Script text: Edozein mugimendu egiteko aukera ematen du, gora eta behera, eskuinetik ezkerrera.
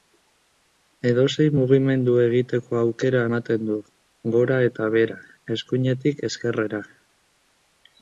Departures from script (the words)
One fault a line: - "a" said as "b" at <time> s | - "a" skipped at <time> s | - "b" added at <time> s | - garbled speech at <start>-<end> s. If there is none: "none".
none